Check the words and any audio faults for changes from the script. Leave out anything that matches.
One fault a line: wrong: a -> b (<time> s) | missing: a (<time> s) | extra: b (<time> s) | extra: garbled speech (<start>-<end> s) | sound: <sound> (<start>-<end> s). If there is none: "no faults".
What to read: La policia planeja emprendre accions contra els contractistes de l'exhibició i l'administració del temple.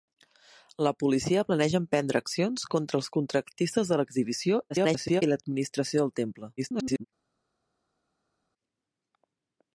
extra: garbled speech (4.7-5.2 s)
extra: garbled speech (6.6-7.1 s)